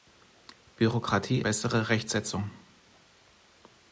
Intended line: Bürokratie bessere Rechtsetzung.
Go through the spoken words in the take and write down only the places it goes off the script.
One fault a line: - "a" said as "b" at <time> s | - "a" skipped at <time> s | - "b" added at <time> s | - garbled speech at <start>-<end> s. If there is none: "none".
none